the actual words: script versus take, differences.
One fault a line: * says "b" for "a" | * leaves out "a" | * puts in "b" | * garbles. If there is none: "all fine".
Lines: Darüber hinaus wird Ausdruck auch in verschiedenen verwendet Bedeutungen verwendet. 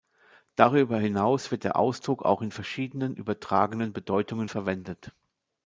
* puts in "der"
* says "übertragenen" for "verwendet"